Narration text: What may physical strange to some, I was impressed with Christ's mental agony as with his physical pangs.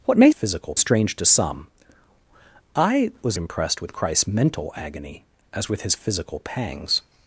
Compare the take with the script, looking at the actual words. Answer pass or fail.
pass